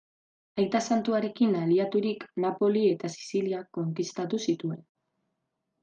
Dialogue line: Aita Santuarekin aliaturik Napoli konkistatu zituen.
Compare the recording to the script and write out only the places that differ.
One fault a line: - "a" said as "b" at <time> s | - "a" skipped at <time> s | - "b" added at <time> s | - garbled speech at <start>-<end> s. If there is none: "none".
- "eta Sizilia" added at 2.9 s